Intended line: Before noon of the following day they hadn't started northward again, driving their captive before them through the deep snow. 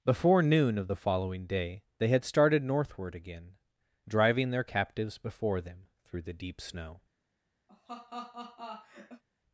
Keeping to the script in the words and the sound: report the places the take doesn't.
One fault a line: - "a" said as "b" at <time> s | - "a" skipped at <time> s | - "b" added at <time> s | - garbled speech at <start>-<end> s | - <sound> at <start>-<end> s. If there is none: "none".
- "hadn't" said as "had" at 2.1 s
- "captive" said as "captives" at 4.6 s
- laugh at 7.7-9.2 s